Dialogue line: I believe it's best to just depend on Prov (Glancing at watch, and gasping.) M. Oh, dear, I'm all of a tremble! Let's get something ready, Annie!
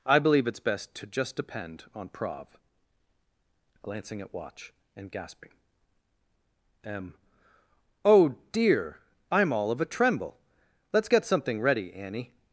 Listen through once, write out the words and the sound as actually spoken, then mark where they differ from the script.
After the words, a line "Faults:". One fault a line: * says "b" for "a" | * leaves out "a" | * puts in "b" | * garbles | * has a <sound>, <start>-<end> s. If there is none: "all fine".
I believe it's best to just depend on Prov (Glancing at watch, and gasping.) M. Oh, dear, I'm all of a tremble! Let's get something ready, Annie!
Faults:
all fine